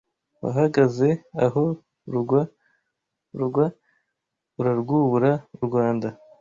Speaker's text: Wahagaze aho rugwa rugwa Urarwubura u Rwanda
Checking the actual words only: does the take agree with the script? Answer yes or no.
yes